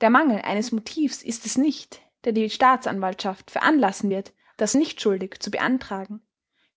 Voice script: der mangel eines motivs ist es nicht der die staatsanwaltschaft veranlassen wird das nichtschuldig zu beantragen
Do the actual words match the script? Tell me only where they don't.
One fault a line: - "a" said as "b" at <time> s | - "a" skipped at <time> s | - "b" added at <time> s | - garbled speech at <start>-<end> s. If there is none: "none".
none